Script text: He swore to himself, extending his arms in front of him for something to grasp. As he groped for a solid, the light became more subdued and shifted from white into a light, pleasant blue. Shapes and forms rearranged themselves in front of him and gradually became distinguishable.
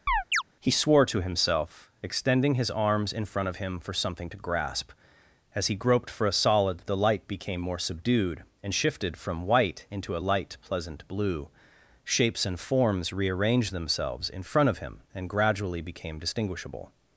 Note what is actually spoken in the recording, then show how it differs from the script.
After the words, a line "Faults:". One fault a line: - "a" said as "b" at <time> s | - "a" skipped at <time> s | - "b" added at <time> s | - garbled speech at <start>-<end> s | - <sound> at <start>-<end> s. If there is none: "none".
He swore to himself, extending his arms in front of him for something to grasp. As he groped for a solid, the light became more subdued and shifted from white into a light, pleasant blue. Shapes and forms rearranged themselves in front of him and gradually became distinguishable.
Faults:
- chirp at 0.1-0.4 s